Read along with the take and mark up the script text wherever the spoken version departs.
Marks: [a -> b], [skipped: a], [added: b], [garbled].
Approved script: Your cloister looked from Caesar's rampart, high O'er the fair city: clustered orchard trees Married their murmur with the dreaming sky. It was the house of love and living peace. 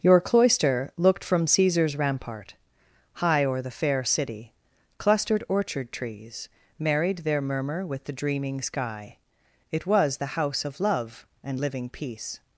Your cloister looked from Caesar's rampart, high O'er the fair city: clustered orchard trees Married their murmur with the dreaming sky. It was the house of love and living peace.